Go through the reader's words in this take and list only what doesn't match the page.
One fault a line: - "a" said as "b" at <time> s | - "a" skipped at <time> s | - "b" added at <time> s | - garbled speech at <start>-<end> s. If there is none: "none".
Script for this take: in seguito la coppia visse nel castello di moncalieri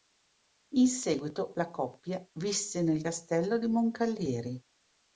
none